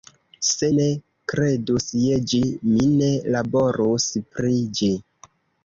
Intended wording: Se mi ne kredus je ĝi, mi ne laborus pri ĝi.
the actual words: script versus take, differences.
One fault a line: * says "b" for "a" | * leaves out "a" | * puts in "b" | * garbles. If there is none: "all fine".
* leaves out "mi"